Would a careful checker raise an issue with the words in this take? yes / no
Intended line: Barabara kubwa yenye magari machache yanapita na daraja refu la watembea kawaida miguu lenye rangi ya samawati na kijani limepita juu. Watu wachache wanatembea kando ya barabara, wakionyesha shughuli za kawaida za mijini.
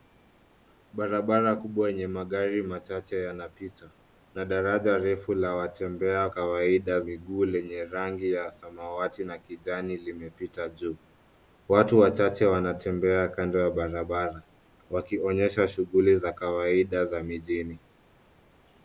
no